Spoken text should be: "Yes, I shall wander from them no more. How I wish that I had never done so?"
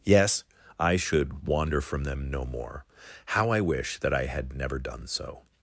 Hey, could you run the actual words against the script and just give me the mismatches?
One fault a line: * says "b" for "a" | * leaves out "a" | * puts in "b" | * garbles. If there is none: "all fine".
* says "should" for "shall"